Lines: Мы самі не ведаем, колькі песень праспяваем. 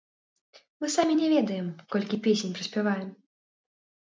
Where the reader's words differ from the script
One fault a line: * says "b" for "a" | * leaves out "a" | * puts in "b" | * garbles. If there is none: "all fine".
all fine